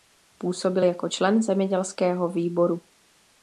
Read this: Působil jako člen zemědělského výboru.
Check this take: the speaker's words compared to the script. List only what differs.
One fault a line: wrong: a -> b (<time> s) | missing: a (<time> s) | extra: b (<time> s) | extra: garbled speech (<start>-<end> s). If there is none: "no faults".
no faults